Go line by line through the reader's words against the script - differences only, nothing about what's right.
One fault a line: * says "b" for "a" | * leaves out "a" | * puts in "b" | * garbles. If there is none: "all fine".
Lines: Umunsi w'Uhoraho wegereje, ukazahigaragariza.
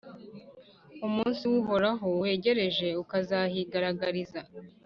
all fine